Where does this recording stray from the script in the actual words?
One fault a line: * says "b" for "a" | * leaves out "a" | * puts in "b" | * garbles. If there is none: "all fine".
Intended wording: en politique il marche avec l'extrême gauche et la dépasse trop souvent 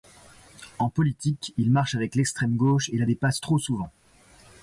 all fine